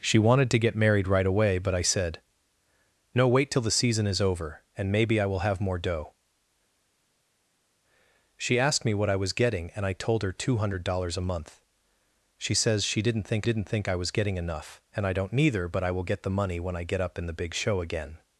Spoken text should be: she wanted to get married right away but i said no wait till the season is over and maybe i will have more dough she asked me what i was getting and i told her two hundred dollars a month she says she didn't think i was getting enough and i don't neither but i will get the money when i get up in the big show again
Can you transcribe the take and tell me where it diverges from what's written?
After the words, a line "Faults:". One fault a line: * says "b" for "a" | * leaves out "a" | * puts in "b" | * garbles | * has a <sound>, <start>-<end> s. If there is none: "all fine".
she wanted to get married right away but i said no wait till the season is over and maybe i will have more dough she asked me what i was getting and i told her two hundred dollars a month she says she didn't think didn't think i was getting enough and i don't neither but i will get the money when i get up in the big show again
Faults:
* puts in "didn't think"